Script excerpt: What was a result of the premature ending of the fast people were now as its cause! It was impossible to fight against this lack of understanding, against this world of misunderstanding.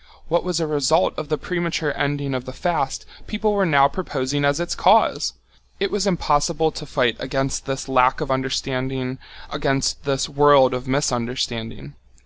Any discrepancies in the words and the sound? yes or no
yes